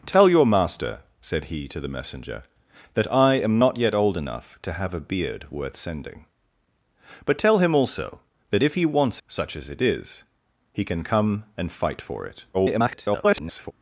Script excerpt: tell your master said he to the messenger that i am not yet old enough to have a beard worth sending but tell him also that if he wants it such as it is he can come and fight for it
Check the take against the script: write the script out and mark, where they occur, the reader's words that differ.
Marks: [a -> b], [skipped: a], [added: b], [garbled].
tell your master said he to the messenger that i am not yet old enough to have a beard worth sending but tell him also that if he wants [skipped: it] such as it is he can come and fight for it [garbled]